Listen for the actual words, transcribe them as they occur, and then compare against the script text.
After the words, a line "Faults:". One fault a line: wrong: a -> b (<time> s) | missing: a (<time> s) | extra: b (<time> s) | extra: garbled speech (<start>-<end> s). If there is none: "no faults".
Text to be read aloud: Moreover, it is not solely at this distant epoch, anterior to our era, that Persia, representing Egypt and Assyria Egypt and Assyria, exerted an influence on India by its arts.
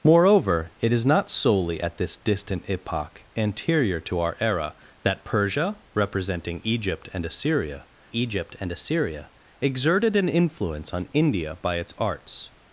Moreover, it is not solely at this distant epoch, anterior to our era, that Persia, representing Egypt and Assyria Egypt and Assyria, exerted an influence on India by its arts.
Faults:
no faults